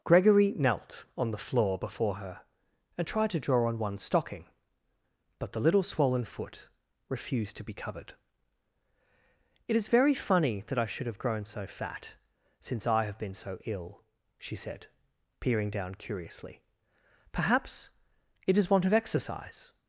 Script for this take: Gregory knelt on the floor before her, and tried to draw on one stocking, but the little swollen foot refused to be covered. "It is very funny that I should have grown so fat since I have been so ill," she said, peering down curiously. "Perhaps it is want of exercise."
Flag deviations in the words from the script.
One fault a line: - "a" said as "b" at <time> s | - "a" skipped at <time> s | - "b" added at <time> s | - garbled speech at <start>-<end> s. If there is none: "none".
none